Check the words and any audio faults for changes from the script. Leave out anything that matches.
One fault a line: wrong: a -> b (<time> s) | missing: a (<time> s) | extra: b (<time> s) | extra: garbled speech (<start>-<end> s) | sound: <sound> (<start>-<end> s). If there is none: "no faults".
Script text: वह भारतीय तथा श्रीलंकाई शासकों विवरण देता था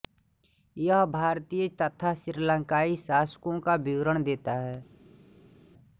wrong: वह -> यह (0.8 s)
extra: का (3.6 s)
wrong: था -> है (4.6 s)